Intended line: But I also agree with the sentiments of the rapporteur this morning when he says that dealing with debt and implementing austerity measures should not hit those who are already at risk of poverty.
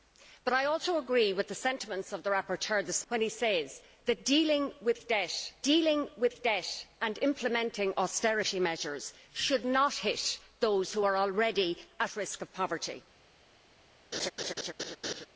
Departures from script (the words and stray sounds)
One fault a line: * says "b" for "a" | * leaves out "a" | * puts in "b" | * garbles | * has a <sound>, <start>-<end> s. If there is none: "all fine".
* leaves out "morning"
* puts in "dealing with debt"
* has a laugh, 14.1-15.3 s